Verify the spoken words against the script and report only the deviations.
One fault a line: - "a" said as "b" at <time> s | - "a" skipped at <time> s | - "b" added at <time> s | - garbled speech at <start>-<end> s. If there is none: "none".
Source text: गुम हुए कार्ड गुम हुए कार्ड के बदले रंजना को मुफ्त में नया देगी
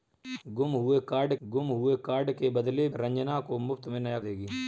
none